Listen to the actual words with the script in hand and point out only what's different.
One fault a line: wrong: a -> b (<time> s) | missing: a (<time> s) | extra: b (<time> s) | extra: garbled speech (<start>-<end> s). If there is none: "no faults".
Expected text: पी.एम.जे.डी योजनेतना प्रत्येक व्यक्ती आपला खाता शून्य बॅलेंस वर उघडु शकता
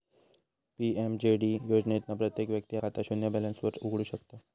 missing: आपला (2.8 s)